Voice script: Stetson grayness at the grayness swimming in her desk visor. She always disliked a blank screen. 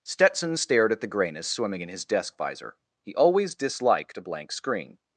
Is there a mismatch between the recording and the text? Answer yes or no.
yes